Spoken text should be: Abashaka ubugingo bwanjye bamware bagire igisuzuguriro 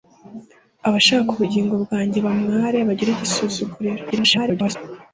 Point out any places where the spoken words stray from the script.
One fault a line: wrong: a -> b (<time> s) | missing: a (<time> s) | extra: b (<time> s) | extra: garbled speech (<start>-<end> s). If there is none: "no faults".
extra: garbled speech (4.1-4.8 s)